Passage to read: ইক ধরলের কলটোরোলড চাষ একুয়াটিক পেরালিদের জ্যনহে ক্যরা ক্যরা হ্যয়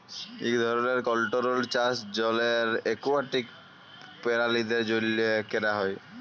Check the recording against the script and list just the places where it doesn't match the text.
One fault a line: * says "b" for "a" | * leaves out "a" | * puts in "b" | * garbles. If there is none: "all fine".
* puts in "জলের"
* leaves out "ক্যরা"